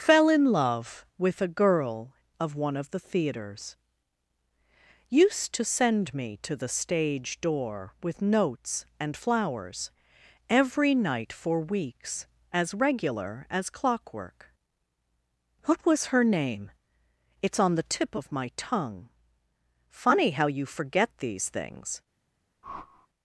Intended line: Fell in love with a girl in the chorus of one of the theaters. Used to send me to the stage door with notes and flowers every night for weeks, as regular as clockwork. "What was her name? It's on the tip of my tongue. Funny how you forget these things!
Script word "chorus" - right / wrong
wrong